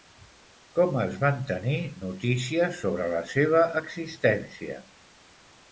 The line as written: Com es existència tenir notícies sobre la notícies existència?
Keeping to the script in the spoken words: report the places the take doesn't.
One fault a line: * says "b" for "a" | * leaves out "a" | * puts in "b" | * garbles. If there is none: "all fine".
* says "van" for "existència"
* says "seva" for "notícies"